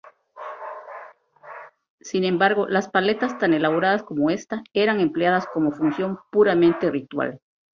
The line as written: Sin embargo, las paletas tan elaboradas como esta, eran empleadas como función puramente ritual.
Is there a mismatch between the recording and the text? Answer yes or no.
no